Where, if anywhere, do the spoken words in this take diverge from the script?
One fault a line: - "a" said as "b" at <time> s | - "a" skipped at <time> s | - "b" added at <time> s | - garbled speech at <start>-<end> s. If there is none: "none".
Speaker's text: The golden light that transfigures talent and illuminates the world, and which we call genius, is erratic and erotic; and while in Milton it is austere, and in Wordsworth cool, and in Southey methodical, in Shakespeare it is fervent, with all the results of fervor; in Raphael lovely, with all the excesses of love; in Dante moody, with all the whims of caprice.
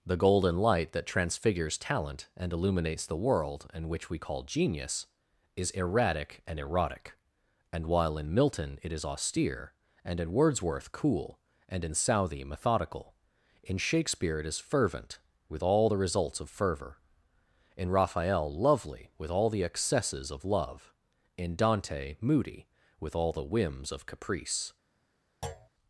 none